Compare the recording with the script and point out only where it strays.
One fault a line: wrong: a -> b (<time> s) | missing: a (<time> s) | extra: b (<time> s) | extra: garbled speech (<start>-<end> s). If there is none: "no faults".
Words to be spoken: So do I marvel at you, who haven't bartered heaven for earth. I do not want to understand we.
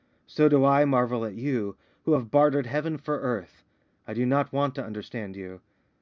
wrong: haven't -> have (2.1 s)
wrong: we -> you (5.4 s)